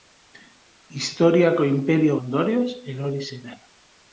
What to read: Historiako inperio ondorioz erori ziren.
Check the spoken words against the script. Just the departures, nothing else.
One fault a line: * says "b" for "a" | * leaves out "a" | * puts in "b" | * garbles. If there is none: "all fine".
all fine